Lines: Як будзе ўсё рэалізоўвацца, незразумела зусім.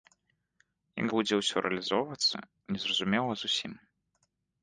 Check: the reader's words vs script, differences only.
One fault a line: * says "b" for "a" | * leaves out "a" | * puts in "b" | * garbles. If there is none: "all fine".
all fine